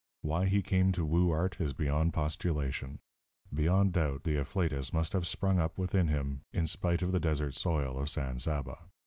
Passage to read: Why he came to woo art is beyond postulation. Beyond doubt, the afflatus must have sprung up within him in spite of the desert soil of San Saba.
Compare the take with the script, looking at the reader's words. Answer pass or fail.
pass